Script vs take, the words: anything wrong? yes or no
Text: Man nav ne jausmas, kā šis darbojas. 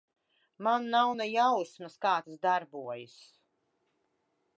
yes